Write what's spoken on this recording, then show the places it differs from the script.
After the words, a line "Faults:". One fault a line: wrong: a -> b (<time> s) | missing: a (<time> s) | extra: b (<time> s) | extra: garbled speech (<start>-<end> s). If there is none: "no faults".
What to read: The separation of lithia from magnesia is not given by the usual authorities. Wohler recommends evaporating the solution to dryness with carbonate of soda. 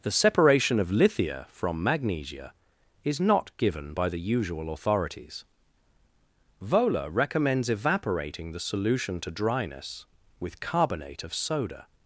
The separation of lithia from magnesia is not given by the usual authorities. Wohler recommends evaporating the solution to dryness with carbonate of soda.
Faults:
no faults